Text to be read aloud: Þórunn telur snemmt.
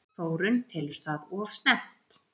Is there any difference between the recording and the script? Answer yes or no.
yes